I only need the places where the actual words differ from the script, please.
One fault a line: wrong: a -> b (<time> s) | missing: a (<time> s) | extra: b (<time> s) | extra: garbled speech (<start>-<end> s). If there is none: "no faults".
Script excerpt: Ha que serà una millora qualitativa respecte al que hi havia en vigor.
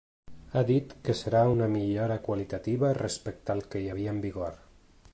extra: dit (0.7 s)